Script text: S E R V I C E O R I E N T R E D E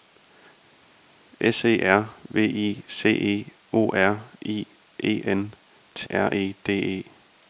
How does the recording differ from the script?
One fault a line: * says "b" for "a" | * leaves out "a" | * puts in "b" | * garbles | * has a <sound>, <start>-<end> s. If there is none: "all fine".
all fine